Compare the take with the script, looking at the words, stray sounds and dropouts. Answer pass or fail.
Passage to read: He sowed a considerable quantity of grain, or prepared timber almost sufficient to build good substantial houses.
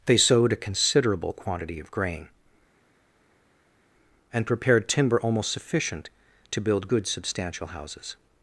fail